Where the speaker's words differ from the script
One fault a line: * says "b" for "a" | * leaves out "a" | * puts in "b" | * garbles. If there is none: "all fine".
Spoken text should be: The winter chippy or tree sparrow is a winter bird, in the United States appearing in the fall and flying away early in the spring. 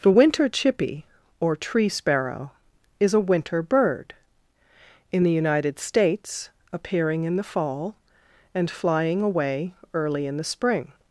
all fine